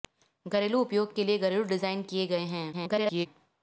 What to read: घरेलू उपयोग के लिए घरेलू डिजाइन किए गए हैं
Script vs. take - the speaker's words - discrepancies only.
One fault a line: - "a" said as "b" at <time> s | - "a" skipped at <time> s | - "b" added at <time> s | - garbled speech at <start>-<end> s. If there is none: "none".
- garbled speech at 2.7-3.3 s